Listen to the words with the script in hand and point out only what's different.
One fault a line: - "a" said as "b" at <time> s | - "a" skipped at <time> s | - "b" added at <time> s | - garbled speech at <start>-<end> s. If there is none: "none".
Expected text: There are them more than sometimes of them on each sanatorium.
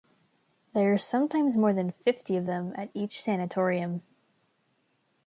- "them" said as "sometimes" at 1.0 s
- "sometimes" said as "fifty" at 1.9 s
- "on" said as "at" at 2.8 s